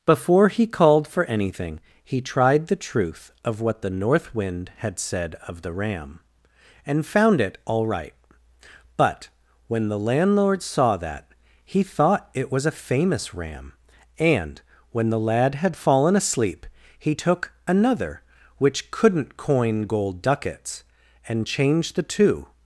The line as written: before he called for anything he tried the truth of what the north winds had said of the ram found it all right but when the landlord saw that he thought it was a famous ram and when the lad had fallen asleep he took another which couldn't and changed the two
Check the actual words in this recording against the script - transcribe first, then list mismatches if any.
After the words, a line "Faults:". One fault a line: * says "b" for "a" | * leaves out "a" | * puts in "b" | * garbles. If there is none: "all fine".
before he called for anything he tried the truth of what the north wind had said of the ram and found it all right but when the landlord saw that he thought it was a famous ram and when the lad had fallen asleep he took another which couldn't coin gold ducats and changed the two
Faults:
* says "wind" for "winds"
* puts in "and"
* puts in "coin gold ducats"